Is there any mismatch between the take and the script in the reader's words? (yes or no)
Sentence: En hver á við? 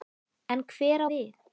no